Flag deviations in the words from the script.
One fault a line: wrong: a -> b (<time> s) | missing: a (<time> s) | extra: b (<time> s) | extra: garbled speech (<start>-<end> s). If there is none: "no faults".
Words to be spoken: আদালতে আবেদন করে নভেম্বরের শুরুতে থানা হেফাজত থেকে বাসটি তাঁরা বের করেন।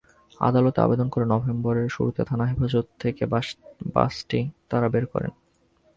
no faults